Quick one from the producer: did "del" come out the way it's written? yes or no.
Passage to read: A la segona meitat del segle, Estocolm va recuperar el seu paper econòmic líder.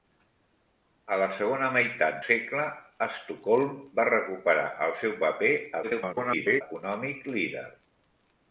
no